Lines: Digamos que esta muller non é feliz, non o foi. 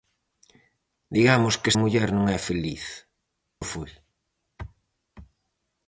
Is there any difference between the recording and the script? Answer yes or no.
yes